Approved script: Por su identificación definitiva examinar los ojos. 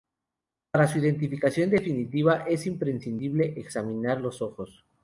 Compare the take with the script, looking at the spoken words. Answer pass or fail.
fail